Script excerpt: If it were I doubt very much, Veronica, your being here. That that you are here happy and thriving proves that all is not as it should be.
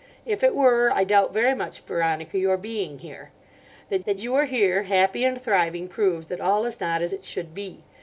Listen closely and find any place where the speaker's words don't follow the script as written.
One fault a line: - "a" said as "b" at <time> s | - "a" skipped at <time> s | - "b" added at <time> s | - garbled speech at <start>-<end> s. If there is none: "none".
none